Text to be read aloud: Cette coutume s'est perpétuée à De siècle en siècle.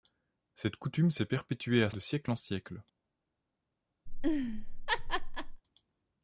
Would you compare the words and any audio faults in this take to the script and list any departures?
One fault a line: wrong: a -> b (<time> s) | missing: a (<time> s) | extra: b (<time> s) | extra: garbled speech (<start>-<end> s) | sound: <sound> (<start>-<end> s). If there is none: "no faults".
sound: laugh (4.1-5.6 s)